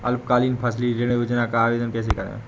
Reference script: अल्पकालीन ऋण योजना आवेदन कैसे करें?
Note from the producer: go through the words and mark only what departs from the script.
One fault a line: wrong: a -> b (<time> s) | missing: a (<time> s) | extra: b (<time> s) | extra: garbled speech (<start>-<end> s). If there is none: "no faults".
extra: फसली (0.6 s)
extra: का (1.5 s)